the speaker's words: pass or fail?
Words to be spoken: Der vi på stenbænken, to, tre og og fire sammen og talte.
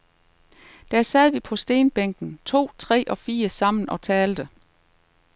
fail